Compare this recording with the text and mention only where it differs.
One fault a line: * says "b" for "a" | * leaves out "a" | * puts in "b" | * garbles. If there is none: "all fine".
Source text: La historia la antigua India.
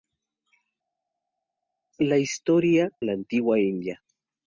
all fine